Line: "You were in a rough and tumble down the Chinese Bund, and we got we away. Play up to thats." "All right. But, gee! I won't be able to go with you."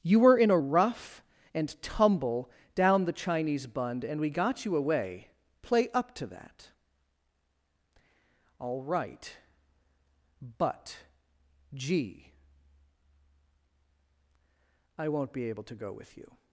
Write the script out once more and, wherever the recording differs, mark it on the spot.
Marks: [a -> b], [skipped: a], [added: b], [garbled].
"You were in a rough and tumble down the Chinese Bund, and we got [we -> you] away. Play up to [thats." -> that] "All right. But, gee! I won't be able to go with you."